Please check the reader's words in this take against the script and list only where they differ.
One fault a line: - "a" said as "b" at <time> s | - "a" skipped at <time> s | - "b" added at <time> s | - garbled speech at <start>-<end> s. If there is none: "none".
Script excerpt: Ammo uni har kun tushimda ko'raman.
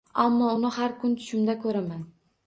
none